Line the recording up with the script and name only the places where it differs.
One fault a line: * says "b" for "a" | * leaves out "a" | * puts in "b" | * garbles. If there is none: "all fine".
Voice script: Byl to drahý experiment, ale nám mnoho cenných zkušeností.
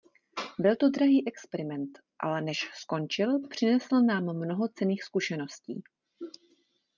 * puts in "než skončil přinesl"